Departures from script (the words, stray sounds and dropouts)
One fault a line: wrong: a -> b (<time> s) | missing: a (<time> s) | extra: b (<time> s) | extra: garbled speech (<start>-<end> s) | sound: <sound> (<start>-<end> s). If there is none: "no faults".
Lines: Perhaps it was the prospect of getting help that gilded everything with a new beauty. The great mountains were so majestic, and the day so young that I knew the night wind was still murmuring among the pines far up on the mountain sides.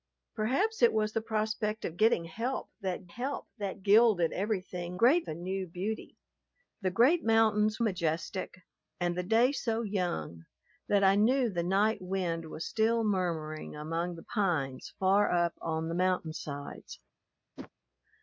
extra: help that (3.1 s)
wrong: with -> great (4.9 s)
missing: were so (7.8 s)
sound: whoosh (17.6-17.7 s)